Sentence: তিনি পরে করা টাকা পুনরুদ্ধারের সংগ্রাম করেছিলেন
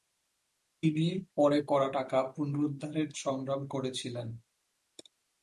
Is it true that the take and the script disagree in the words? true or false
false